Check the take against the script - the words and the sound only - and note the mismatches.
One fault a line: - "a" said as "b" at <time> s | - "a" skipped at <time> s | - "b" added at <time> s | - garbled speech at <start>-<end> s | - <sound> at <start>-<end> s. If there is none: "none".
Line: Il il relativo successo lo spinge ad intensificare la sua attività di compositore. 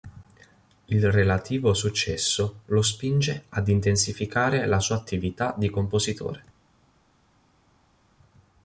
- "il" skipped at 1.1 s